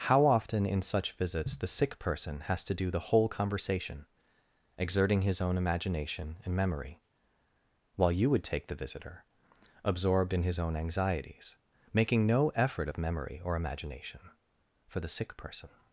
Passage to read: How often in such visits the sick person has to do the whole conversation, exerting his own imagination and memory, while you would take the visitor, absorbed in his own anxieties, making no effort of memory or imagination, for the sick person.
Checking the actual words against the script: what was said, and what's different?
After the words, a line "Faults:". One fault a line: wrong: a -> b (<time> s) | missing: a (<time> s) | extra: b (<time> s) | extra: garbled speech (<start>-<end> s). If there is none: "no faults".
How often in such visits the sick person has to do the whole conversation, exerting his own imagination and memory, while you would take the visitor, absorbed in his own anxieties, making no effort of memory or imagination, for the sick person.
Faults:
no faults